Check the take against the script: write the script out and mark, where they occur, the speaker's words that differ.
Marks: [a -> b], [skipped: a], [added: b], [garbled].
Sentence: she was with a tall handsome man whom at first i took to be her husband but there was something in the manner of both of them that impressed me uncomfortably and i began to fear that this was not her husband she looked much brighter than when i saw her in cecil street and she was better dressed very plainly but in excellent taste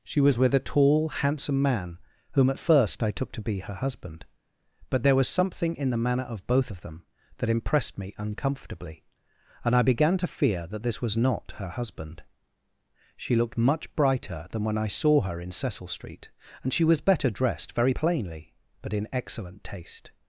she was with a tall handsome man whom at first i took to be her husband but there was something in the manner of both of them that impressed me uncomfortably and i began to fear that this was not her husband she looked much brighter than when i saw her in cecil street and she was better dressed very plainly but in excellent taste